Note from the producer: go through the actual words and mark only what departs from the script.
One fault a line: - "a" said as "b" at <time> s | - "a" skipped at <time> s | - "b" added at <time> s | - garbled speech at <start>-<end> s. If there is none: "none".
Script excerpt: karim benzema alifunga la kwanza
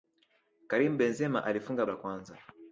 none